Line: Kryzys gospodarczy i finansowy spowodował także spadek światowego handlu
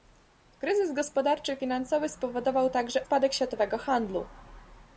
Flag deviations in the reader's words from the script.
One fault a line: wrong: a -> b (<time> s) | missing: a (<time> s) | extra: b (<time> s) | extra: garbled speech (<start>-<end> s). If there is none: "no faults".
no faults